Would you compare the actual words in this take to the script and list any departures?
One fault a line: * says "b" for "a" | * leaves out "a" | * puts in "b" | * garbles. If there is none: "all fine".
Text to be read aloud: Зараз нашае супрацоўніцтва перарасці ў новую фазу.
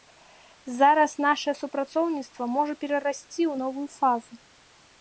* puts in "можа"